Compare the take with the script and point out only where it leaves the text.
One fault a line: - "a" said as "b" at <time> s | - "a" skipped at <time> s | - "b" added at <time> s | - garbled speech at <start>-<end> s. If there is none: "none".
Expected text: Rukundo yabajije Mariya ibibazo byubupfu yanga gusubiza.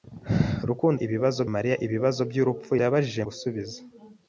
- "yabajije" said as "ibibazo" at 1.0 s
- "yanga" said as "yabajije" at 2.8 s